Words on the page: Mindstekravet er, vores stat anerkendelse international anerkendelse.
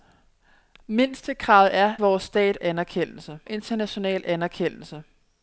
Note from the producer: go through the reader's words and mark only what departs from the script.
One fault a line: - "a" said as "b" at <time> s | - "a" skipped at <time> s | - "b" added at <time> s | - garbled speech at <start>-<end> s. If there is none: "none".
none